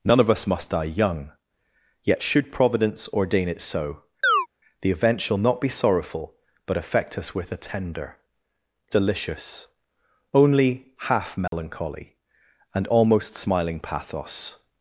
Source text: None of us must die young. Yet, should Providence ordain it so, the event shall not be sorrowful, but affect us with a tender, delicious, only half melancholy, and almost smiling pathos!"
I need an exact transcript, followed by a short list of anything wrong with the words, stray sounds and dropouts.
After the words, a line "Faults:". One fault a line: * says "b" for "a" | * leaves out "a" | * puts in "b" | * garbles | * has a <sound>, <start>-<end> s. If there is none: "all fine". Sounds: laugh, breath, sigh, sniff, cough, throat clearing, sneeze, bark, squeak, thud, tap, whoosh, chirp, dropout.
None of us must die young. Yet, should Providence ordain it so, the event shall not be sorrowful, but affect us with a tender, delicious, only half melancholy, and almost smiling pathos!"
Faults:
* has a chirp, 4.2-4.5 s
* has a dropout, 11.5-11.5 s